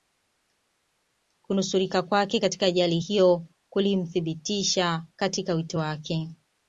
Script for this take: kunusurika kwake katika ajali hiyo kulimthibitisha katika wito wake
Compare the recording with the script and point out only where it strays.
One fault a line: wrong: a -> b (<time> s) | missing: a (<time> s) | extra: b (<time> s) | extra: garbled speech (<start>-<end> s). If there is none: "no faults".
no faults